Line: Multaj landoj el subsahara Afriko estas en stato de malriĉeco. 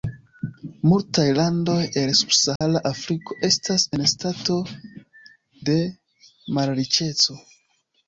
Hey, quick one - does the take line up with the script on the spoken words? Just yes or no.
yes